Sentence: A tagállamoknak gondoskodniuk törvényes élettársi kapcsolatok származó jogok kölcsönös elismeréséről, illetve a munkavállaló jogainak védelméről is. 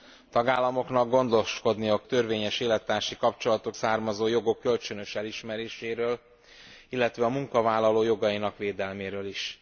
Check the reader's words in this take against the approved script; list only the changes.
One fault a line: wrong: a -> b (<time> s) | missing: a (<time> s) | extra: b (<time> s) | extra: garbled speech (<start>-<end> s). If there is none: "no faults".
no faults